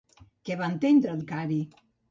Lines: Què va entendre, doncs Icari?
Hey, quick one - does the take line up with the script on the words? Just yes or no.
no